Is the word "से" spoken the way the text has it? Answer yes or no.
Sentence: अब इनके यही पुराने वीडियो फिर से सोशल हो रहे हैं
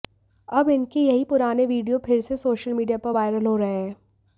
yes